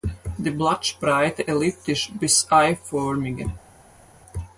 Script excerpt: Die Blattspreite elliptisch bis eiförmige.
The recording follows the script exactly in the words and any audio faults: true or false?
true